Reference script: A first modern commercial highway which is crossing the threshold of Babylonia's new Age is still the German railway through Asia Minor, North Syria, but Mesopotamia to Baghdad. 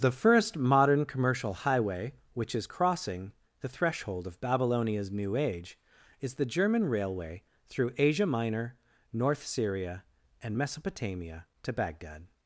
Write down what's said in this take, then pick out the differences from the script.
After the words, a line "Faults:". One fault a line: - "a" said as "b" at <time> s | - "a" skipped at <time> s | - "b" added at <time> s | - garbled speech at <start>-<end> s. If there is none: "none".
The first modern commercial highway which is crossing the threshold of Babylonia's new Age is the German railway through Asia Minor, North Syria, and Mesopotamia to Baghdad.
Faults:
- "A" said as "The" at 0.0 s
- "still" skipped at 6.3 s
- "but" said as "and" at 10.4 s